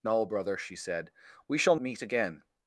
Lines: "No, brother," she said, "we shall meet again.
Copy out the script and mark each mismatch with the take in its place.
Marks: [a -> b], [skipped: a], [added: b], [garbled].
"No, brother," she said, "we shall meet again.